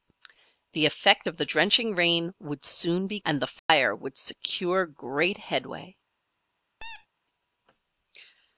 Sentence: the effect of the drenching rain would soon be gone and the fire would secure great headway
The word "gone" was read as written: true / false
false